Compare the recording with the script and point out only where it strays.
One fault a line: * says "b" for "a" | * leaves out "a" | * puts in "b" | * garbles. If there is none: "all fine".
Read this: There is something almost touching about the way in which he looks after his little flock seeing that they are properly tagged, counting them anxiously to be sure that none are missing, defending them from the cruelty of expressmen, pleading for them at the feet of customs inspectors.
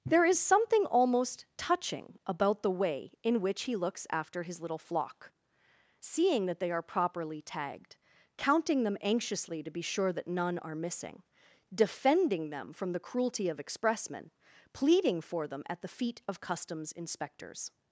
all fine